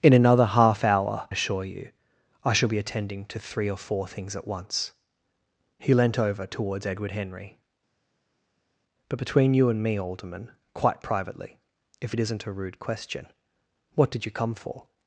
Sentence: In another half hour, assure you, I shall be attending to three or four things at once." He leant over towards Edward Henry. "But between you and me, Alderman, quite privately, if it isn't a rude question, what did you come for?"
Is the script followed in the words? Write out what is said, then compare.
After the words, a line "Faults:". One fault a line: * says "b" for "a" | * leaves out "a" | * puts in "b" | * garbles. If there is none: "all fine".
In another half hour, assure you, I shall be attending to three or four things at once." He leant over towards Edward Henry. "But between you and me, Alderman, quite privately, if it isn't a rude question, what did you come for?"
Faults:
all fine